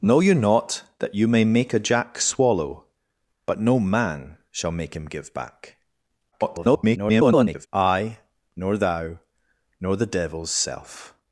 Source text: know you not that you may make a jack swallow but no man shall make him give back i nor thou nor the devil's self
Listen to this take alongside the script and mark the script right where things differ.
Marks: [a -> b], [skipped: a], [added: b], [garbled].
know you not that you may make a jack swallow but no man shall make him give back [garbled] i nor thou nor the devil's self